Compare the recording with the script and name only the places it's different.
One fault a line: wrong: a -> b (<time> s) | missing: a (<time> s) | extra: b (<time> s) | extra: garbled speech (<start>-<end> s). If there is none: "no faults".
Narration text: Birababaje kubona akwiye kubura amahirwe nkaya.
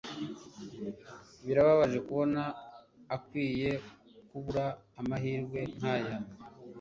no faults